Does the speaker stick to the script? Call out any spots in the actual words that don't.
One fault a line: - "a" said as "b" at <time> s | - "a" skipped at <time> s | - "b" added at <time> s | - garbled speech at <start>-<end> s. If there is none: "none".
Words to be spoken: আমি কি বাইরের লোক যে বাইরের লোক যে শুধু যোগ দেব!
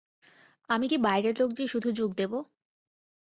- "বাইরের লোক যে" skipped at 1.6 s